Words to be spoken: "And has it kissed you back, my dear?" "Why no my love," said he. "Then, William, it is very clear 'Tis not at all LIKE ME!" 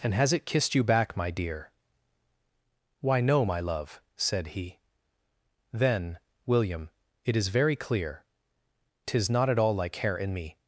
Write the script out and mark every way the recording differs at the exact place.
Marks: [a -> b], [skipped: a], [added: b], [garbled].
"And has it kissed you back, my dear?" "Why no my love," said he. "Then, William, it is very clear 'Tis not at all LIKE [added: hair in] ME!"